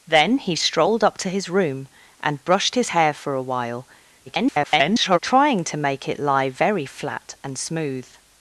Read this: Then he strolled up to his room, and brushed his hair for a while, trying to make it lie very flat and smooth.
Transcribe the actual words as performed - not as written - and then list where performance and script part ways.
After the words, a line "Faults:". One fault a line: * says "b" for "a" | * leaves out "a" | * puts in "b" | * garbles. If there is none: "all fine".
Then he strolled up to his room, and brushed his hair for a while, [garbled] trying to make it lie very flat and smooth.
Faults:
* garbles